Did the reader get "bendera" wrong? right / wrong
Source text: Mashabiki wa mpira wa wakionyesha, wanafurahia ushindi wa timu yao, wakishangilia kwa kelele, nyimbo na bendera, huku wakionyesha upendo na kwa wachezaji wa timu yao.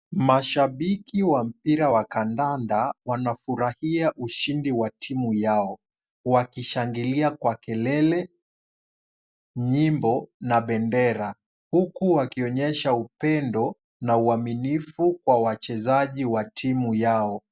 right